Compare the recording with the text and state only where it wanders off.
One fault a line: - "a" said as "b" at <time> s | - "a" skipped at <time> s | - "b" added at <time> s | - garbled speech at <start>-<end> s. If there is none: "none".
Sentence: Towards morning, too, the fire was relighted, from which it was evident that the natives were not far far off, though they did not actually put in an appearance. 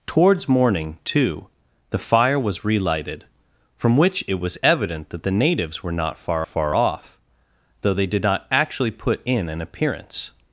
none